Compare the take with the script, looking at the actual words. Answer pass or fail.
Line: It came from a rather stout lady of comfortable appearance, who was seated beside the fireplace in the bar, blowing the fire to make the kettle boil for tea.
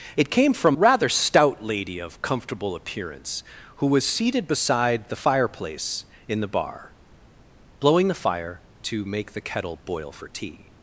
fail